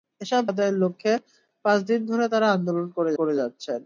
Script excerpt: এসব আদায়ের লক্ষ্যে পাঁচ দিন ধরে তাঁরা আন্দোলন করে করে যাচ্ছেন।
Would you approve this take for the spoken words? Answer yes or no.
yes